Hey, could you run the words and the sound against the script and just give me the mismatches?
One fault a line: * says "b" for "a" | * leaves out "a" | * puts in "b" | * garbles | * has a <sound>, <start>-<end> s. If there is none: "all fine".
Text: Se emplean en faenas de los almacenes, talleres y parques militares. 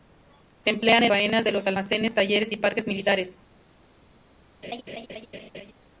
* has a laugh, 4.6-5.7 s